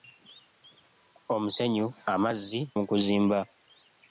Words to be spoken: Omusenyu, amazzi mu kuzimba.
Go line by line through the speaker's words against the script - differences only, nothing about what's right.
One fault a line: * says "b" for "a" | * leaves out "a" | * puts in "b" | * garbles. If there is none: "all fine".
all fine